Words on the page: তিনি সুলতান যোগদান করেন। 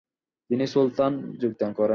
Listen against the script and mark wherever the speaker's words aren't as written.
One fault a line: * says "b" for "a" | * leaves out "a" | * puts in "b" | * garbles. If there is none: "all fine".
all fine